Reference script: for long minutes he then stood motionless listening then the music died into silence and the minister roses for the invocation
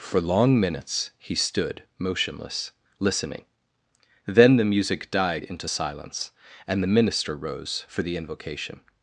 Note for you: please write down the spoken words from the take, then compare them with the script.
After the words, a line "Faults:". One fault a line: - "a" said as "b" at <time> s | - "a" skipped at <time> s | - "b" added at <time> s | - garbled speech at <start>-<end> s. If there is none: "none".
for long minutes he stood motionless listening then the music died into silence and the minister rose for the invocation
Faults:
- "then" skipped at 1.4 s
- "roses" said as "rose" at 7.4 s